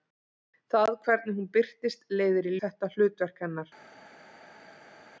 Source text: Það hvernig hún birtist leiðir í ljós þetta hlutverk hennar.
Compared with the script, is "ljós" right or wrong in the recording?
wrong